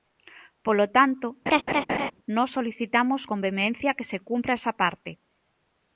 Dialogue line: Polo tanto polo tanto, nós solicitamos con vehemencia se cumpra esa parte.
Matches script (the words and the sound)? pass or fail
fail